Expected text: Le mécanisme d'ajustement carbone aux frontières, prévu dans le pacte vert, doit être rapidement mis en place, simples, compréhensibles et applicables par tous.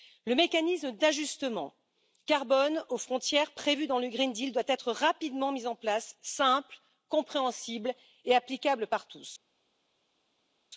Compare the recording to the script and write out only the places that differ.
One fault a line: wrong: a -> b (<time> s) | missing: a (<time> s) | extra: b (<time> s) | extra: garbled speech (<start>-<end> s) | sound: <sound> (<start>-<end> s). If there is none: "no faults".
no faults